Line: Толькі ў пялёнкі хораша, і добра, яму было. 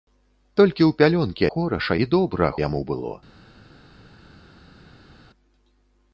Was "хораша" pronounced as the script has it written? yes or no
yes